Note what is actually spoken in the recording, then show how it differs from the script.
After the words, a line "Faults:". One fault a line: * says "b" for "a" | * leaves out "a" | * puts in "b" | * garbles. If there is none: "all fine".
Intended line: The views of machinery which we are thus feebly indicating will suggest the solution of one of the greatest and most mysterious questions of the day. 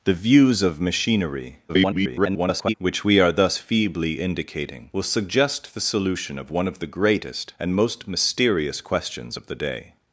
The views of machinery [garbled] which we are thus feebly indicating will suggest the solution of one of the greatest and most mysterious questions of the day.
Faults:
* garbles